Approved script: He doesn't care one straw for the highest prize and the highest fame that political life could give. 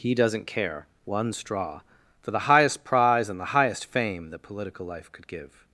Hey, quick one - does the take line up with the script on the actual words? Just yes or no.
yes